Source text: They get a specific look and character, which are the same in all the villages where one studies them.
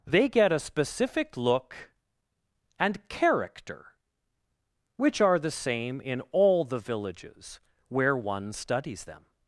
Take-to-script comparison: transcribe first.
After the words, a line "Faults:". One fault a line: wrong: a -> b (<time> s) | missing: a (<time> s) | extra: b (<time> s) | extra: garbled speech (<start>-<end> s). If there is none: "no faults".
They get a specific look and character, which are the same in all the villages where one studies them.
Faults:
no faults